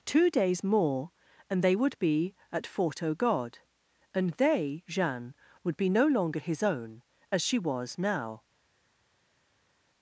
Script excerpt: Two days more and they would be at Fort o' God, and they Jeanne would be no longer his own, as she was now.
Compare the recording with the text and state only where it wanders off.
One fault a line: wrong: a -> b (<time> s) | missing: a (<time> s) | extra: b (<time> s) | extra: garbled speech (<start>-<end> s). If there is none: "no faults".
no faults